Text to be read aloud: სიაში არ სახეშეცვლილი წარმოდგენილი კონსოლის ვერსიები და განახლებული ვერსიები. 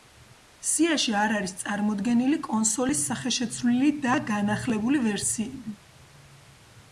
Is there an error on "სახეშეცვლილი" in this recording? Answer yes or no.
yes